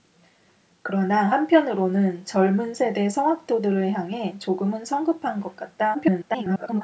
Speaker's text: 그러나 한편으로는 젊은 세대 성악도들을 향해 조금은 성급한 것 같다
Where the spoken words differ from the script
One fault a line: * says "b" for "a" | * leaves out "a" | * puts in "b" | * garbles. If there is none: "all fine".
* garbles